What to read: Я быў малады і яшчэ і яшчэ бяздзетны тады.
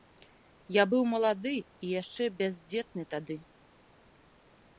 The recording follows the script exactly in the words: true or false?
false